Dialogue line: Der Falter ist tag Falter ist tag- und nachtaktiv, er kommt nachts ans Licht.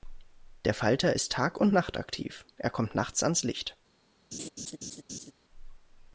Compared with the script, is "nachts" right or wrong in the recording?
right